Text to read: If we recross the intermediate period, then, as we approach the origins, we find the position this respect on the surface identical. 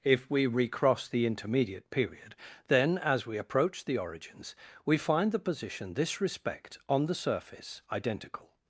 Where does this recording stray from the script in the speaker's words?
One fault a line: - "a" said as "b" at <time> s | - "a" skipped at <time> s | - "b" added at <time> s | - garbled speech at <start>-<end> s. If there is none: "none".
none